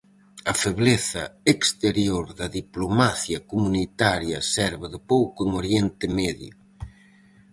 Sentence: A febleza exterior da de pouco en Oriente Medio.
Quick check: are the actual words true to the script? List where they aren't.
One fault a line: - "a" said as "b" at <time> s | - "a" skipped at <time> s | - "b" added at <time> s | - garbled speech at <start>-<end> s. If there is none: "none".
- "diplomacia comunitaria serve" added at 2.6 s